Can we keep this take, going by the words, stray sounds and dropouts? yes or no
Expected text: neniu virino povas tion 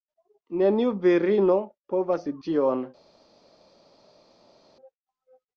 yes